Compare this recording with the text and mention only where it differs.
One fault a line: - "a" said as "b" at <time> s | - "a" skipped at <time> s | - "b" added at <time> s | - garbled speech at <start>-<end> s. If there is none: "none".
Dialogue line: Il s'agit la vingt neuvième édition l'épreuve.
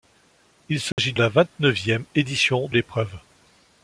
none